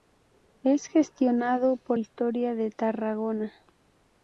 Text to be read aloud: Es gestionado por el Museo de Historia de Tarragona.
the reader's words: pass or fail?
fail